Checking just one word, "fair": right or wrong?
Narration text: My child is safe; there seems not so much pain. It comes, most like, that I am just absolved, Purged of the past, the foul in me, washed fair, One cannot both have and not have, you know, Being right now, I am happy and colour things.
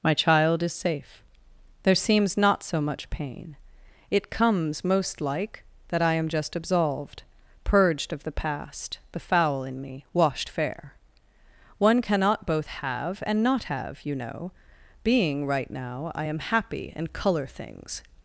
right